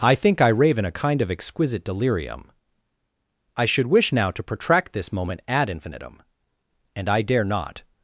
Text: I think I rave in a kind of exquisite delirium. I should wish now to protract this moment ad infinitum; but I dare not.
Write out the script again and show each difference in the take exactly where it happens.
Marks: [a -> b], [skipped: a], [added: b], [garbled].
I think I rave in a kind of exquisite delirium. I should wish now to protract this moment ad infinitum; [but -> and] I dare not.